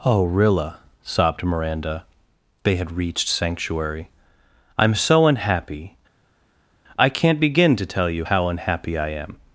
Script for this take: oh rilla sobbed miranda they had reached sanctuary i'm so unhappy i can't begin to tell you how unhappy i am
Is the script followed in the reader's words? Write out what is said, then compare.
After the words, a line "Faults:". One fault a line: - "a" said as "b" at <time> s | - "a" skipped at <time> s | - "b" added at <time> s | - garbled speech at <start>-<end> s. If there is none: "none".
oh rilla sobbed miranda they had reached sanctuary i'm so unhappy i can't begin to tell you how unhappy i am
Faults:
none